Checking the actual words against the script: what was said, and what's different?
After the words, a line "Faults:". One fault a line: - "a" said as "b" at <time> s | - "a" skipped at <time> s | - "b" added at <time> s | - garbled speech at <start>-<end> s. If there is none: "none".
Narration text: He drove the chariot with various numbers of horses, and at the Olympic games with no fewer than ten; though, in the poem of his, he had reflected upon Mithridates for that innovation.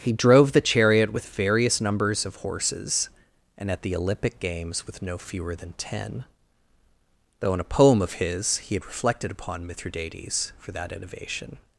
He drove the chariot with various numbers of horses, and at the Olympic games with no fewer than ten; though, in a poem of his, he had reflected upon Mithridates for that innovation.
Faults:
- "the" said as "a" at 7.6 s